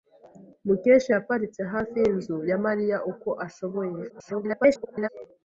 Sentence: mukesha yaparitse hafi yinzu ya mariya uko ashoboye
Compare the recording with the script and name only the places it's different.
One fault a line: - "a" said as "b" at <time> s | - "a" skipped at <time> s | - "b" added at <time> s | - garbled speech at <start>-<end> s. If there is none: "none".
- garbled speech at 4.1-5.1 s